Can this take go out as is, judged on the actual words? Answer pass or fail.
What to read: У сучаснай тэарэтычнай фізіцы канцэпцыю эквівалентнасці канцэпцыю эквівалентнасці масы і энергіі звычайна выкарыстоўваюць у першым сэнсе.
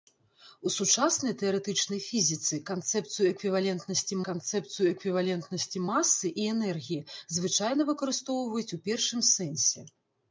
pass